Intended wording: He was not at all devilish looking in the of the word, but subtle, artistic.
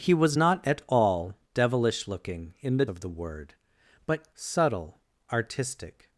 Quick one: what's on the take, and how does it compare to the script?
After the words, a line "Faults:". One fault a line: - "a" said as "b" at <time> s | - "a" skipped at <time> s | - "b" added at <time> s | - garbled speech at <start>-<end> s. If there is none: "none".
He was not at all devilish looking in the of the word, but subtle, artistic.
Faults:
none